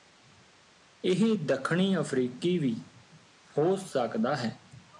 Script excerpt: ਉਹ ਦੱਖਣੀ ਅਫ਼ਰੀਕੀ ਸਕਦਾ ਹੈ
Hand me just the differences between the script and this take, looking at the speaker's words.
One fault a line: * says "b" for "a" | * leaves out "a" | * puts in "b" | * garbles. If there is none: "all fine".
* says "ਇਹ" for "ਉਹ"
* puts in "ਵੀ ਹੋ"